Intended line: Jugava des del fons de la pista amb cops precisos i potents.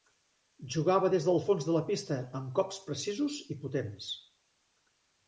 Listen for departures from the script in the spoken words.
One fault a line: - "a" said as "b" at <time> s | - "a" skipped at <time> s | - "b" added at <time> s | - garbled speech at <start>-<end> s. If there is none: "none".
none